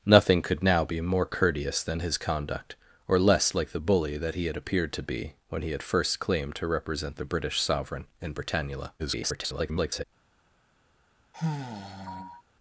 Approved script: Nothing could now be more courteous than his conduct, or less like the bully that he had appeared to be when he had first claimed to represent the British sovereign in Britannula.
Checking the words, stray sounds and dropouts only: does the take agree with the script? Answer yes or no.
no